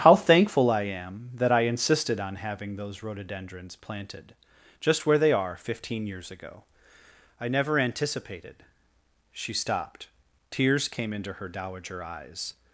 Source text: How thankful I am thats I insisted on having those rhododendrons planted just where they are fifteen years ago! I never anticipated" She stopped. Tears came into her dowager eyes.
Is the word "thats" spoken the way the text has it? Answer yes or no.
no